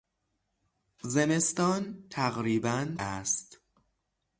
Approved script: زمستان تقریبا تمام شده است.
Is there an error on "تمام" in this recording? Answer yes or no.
yes